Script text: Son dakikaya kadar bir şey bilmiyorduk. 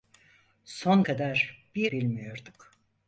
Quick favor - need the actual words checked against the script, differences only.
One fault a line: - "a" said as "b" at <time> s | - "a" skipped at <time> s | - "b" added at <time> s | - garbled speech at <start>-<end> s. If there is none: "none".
- "dakikaya" skipped at 1.0 s
- "şey" skipped at 1.9 s